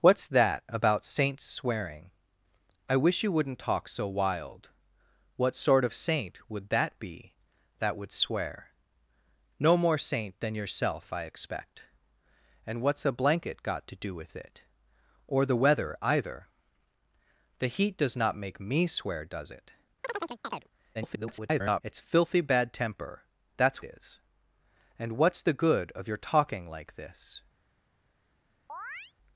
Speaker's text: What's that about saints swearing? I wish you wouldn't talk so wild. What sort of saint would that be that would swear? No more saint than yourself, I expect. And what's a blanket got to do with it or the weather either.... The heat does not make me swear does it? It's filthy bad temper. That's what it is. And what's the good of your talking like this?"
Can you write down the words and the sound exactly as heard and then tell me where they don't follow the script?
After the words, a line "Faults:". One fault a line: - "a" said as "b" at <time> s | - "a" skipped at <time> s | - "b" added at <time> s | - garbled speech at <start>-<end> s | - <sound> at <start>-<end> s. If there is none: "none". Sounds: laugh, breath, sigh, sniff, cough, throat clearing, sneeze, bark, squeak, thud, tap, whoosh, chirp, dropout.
What's that about saints swearing? I wish you wouldn't talk so wild. What sort of saint would that be that would swear? No more saint than yourself, I expect. And what's a blanket got to do with it or the weather either.... The heat does not make me swear does it? [garbled] It's filthy bad temper. That's is. And what's the good of your talking like this?"
Faults:
- chirp at 20.0-20.7 s
- garbled speech at 20.9-21.8 s
- "what it" skipped at 23.8 s
- chirp at 28.7-29.1 s